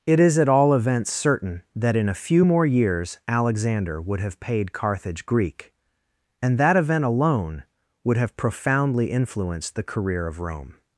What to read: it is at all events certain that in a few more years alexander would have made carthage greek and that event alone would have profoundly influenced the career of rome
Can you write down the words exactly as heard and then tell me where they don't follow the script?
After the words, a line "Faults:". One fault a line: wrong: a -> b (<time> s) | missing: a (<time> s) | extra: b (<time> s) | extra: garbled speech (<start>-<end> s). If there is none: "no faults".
it is at all events certain that in a few more years alexander would have paid carthage greek and that event alone would have profoundly influenced the career of rome
Faults:
wrong: made -> paid (4.4 s)